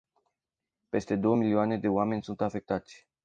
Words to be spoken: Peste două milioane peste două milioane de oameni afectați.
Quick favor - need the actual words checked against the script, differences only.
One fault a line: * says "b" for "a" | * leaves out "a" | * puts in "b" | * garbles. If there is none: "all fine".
* leaves out "peste două milioane"
* puts in "sunt"